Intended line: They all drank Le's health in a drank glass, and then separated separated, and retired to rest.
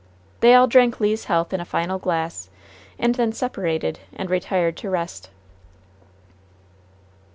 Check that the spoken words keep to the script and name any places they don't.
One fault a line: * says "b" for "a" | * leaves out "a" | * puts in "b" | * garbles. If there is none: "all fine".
* says "final" for "drank"
* leaves out "separated"